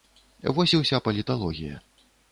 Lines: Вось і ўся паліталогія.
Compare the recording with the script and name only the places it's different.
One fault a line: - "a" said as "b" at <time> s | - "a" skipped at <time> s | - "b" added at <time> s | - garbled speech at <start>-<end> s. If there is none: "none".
none